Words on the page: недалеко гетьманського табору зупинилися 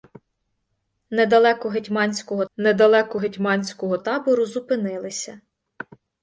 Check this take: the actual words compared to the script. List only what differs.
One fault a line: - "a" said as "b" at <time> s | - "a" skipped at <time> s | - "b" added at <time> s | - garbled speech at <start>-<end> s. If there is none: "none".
- "недалеко гетьманського" added at 2.6 s